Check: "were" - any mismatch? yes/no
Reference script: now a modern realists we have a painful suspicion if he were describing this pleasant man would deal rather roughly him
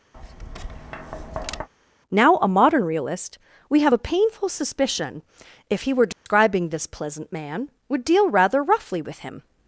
no